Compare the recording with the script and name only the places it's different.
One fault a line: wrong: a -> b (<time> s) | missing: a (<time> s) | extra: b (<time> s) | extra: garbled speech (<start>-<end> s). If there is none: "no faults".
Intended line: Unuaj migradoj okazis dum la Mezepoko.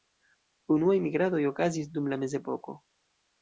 no faults